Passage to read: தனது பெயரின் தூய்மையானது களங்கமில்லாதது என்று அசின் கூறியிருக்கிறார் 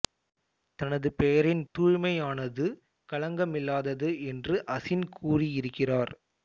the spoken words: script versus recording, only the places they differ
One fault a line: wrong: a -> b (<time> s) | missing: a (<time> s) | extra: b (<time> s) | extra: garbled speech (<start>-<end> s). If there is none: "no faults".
no faults